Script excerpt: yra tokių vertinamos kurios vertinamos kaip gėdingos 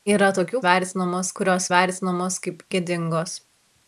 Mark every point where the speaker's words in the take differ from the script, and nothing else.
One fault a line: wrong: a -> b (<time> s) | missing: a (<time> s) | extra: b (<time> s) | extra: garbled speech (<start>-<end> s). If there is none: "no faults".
no faults